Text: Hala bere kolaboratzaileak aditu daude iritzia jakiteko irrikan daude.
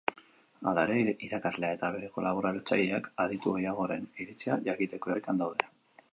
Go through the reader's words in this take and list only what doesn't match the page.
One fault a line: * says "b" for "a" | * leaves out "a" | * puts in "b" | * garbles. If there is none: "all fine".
* puts in "ere irakaslea eta"
* says "gehiagoren" for "daude"